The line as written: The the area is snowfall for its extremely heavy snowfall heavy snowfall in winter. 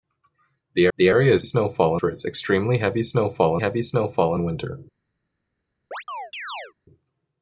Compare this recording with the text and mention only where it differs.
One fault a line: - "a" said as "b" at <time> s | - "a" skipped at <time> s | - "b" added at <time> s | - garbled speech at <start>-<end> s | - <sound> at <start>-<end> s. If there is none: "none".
- chirp at 5.9-6.7 s